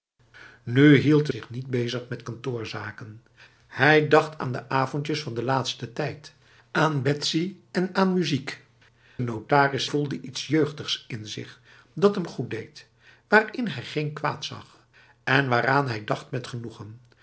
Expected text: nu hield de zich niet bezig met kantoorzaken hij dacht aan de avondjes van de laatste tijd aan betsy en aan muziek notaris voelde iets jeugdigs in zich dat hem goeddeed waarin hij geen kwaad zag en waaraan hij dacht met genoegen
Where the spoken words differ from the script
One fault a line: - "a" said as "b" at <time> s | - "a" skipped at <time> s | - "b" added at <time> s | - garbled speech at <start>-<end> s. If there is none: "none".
none